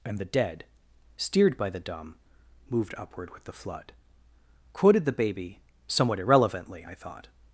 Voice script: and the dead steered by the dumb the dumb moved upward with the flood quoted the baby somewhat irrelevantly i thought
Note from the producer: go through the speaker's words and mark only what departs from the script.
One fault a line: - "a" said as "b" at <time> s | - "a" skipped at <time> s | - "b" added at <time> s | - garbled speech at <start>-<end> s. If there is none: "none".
- "the dumb" skipped at 2.1 s